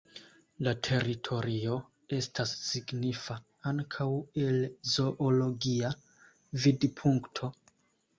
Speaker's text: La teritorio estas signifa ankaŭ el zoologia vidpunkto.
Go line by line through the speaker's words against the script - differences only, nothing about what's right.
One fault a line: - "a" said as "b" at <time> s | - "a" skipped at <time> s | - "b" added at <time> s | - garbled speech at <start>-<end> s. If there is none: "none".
none